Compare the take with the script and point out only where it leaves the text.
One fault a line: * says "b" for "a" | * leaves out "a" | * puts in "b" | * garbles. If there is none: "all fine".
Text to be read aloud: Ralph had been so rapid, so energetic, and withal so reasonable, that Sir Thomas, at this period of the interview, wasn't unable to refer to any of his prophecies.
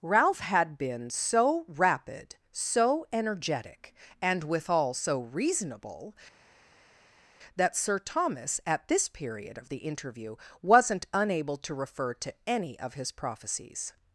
all fine